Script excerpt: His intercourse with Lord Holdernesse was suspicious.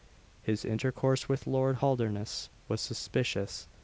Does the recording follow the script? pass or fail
pass